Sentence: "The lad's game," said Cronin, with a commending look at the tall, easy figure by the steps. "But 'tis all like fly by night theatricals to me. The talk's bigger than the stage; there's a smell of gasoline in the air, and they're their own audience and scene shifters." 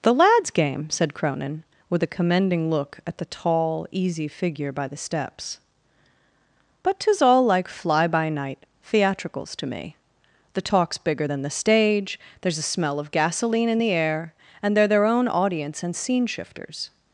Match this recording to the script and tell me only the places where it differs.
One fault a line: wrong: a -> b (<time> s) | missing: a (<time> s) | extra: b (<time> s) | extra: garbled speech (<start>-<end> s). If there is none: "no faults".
no faults